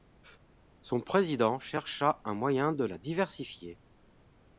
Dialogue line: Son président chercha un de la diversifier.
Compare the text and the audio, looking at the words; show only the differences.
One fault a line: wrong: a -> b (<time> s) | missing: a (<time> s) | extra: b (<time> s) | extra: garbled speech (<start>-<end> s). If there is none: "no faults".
extra: moyen (2.3 s)